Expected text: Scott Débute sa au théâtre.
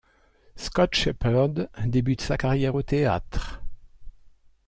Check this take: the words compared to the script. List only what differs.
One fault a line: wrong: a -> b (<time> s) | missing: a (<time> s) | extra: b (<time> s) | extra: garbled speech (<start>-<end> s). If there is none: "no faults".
extra: Shepherd (0.9 s)
extra: carrière (2.4 s)